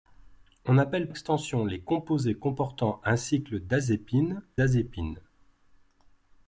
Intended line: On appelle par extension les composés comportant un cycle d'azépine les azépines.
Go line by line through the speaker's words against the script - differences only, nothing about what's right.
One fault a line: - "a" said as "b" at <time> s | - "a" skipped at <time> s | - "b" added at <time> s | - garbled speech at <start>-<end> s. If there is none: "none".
- "par" skipped at 1.1 s
- "les" skipped at 4.4 s